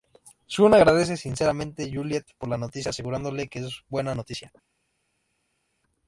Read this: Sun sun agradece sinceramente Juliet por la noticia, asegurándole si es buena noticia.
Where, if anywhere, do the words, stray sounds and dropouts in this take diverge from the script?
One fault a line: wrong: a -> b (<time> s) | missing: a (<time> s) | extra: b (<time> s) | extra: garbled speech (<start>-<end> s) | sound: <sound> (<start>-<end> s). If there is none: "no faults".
missing: sun (0.7 s)
wrong: si -> que (3.5 s)